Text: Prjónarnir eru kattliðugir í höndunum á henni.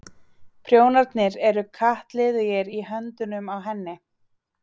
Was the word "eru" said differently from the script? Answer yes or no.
no